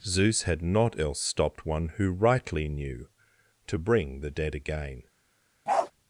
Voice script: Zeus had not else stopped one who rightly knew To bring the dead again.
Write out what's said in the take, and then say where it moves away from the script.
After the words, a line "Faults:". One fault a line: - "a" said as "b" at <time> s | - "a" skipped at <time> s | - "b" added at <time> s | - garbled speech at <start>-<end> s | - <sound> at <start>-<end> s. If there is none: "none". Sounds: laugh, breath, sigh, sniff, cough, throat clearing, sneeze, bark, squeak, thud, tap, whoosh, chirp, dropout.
Zeus had not else stopped one who rightly knew To bring the dead again.
Faults:
- bark at 5.7-5.9 s